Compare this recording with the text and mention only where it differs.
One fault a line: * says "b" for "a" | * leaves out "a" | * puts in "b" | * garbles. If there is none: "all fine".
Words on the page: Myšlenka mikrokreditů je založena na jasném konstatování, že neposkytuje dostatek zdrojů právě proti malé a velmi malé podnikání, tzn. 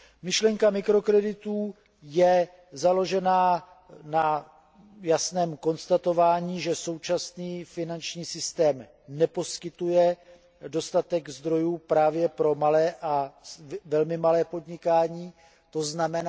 * puts in "současný finanční systém"
* says "pro" for "proti"